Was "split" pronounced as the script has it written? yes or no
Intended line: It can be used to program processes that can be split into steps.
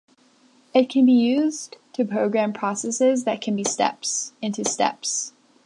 no